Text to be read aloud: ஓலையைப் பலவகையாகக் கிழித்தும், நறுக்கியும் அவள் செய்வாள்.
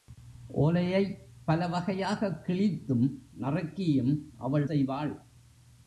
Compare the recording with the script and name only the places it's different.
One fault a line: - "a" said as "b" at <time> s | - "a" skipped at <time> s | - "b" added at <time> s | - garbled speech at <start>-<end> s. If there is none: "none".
none